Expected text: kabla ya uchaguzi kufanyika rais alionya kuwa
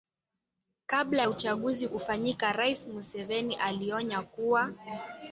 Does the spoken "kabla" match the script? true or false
true